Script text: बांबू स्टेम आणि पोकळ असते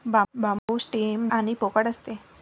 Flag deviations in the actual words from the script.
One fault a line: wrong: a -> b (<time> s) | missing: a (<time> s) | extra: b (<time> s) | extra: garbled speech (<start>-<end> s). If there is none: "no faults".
no faults